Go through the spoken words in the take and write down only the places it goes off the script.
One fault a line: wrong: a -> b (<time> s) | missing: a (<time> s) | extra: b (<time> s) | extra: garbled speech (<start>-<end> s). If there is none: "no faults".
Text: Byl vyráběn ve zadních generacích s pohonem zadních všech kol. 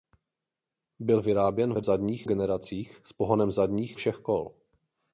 no faults